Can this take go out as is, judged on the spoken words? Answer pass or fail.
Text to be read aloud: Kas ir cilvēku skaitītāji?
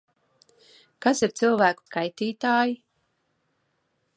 pass